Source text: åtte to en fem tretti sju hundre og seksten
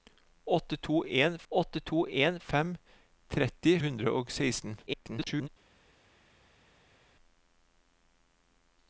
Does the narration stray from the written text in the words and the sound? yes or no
yes